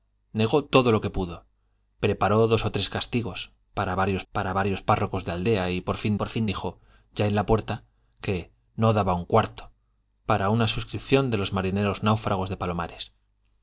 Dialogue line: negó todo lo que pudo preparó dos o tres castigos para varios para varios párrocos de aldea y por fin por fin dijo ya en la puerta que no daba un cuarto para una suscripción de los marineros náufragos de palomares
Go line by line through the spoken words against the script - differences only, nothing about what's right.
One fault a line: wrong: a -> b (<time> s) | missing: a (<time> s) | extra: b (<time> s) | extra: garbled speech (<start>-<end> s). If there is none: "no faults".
no faults